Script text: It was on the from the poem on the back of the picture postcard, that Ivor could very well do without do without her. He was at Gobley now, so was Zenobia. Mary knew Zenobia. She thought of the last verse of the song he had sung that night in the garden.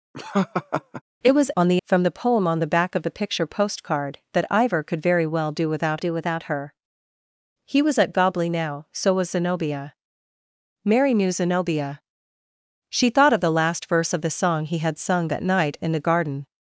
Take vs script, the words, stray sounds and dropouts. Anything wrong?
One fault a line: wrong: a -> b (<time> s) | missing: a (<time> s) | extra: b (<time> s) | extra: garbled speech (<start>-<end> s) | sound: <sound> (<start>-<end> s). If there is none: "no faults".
sound: laugh (0.1-1.0 s)